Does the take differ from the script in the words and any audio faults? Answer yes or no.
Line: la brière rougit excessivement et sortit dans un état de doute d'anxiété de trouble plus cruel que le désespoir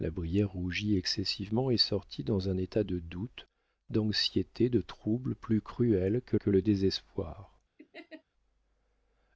yes